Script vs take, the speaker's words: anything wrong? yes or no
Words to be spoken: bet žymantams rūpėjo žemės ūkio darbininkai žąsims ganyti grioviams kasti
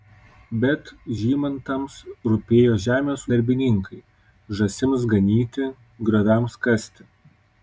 yes